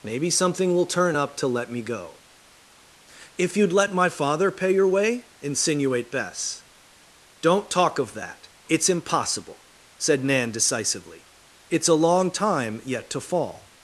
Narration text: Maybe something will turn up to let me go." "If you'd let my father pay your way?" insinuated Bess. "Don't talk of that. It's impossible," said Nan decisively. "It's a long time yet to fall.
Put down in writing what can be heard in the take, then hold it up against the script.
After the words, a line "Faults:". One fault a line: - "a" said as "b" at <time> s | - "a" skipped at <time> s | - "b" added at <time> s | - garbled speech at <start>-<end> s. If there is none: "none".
Maybe something will turn up to let me go." "If you'd let my father pay your way?" insinuate Bess. "Don't talk of that. It's impossible," said Nan decisively. "It's a long time yet to fall.
Faults:
- "insinuated" said as "insinuate" at 5.4 s